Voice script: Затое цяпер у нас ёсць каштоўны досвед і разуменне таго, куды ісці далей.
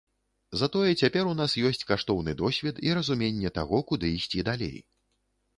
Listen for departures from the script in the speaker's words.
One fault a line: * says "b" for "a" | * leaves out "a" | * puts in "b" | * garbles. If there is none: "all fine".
all fine